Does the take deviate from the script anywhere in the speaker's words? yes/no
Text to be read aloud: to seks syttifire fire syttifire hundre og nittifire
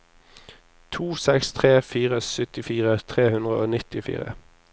yes